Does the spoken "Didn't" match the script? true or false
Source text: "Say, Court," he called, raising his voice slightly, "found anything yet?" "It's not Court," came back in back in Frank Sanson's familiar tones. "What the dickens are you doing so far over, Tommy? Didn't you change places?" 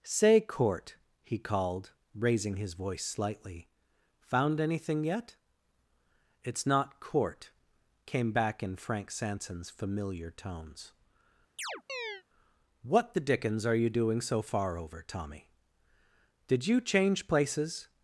false